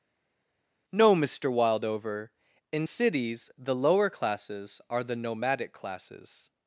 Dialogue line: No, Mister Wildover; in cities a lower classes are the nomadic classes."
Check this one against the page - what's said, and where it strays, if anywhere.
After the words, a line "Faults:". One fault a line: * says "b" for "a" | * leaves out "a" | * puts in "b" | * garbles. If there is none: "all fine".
No, Mister Wildover; in cities the lower classes are the nomadic classes."
Faults:
* says "the" for "a"